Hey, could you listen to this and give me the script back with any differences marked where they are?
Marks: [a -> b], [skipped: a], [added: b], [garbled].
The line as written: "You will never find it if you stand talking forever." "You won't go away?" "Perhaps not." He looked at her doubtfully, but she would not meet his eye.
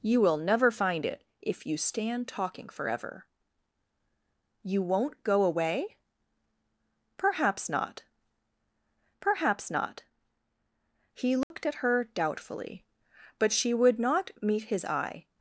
"You will never find it if you stand talking forever." "You won't go away?" "Perhaps not." [added: perhaps not] He looked at her doubtfully, but she would not meet his eye.